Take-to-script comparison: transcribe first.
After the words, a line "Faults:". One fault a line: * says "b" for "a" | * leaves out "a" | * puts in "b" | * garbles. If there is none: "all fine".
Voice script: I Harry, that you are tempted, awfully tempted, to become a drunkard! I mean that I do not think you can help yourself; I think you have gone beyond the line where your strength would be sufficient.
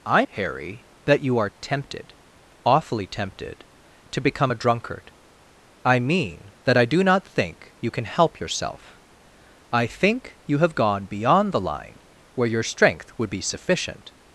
I Harry, that you are tempted, awfully tempted, to become a drunkard! I mean that I do not think you can help yourself; I think you have gone beyond the line where your strength would be sufficient.
Faults:
all fine